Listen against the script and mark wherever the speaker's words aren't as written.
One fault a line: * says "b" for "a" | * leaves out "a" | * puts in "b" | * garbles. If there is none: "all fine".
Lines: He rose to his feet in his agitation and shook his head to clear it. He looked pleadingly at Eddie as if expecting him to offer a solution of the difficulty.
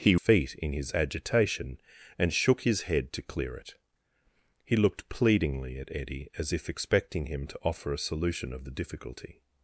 * leaves out "rose to his"